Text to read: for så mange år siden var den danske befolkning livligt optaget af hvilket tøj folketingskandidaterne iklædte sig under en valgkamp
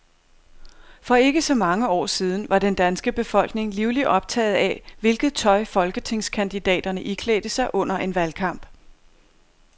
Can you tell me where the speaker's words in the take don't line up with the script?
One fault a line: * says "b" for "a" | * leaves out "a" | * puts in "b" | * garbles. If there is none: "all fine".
* puts in "ikke"